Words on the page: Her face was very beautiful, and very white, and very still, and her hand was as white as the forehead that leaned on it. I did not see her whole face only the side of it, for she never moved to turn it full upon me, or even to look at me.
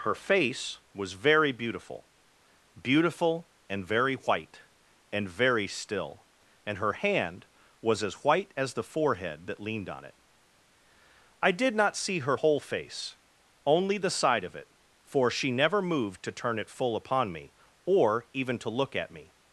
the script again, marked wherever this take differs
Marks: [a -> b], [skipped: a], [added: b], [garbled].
Her face was very beautiful, [added: beautiful] and very white, and very still, and her hand was as white as the forehead that leaned on it. I did not see her whole face only the side of it, for she never moved to turn it full upon me, or even to look at me.